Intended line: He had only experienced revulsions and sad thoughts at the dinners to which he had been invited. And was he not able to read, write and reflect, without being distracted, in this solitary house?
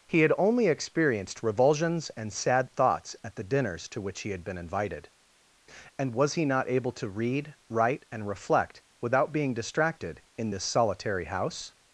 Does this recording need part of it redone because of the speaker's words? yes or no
no